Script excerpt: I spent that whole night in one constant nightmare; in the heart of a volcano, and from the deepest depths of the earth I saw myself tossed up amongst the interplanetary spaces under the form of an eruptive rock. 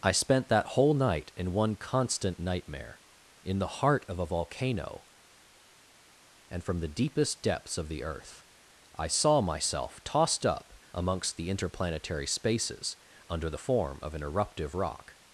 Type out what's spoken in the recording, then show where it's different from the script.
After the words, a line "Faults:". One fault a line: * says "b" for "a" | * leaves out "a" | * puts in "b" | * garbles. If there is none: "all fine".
I spent that whole night in one constant nightmare; in the heart of a volcano, and from the deepest depths of the earth I saw myself tossed up amongst the interplanetary spaces under the form of an eruptive rock.
Faults:
all fine